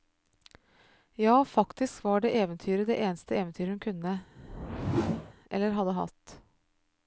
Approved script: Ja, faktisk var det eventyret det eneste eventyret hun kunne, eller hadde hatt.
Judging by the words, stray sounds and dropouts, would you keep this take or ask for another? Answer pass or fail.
fail